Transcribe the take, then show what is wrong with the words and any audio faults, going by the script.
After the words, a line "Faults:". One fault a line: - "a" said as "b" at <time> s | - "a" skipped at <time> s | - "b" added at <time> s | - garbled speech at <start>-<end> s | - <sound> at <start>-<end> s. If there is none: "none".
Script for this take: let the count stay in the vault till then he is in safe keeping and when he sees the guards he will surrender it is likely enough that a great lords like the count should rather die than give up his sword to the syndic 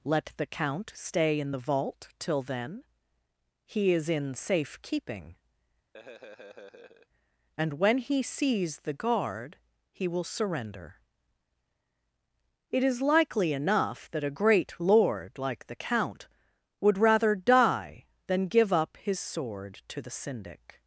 let the count stay in the vault till then he is in safe keeping and when he sees the guard he will surrender it is likely enough that a great lord like the count would rather die than give up his sword to the syndic
Faults:
- laugh at 5.9-7.1 s
- "guards" said as "guard" at 8.9 s
- "lords" said as "lord" at 14.8 s
- "should" said as "would" at 16.8 s